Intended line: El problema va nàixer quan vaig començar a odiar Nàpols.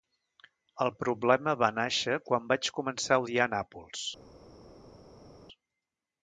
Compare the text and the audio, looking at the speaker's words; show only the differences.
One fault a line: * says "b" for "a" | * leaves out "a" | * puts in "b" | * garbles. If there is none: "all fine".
all fine